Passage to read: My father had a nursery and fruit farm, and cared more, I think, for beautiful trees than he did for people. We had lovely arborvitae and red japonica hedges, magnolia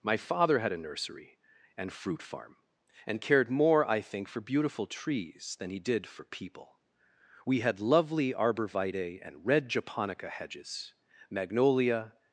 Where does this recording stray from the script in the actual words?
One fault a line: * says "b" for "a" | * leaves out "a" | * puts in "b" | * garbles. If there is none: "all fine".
all fine